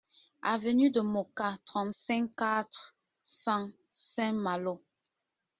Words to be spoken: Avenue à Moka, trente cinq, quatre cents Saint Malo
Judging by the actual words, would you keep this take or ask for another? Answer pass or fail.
fail